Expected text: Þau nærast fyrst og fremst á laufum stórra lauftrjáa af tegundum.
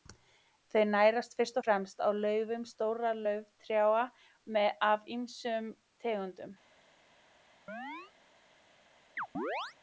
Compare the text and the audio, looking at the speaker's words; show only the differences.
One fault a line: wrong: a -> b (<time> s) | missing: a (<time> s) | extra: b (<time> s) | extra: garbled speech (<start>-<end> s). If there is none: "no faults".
extra: ýmsum (5.2 s)